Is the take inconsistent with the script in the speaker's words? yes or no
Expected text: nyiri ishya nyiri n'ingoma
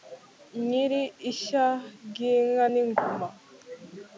yes